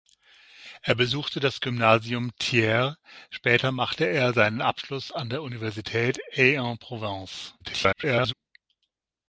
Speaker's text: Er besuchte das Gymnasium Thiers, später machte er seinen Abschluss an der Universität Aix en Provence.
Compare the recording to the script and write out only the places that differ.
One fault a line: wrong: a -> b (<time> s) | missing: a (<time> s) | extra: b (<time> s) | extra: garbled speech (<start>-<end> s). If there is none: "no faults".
extra: garbled speech (7.6-8.3 s)